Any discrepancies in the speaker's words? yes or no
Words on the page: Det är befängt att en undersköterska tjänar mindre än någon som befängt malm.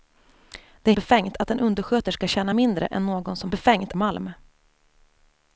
no